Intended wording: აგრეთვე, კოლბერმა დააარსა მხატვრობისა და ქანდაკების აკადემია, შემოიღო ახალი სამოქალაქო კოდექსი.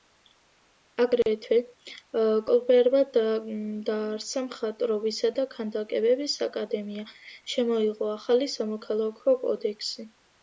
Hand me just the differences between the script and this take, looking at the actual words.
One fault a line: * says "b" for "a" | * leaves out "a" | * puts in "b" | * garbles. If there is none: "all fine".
all fine